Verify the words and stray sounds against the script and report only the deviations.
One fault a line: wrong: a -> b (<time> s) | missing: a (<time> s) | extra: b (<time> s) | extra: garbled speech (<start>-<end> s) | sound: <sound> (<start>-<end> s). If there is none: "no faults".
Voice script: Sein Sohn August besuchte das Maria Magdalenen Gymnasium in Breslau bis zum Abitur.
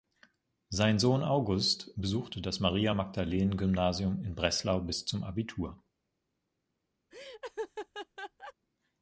sound: laugh (7.1-8.5 s)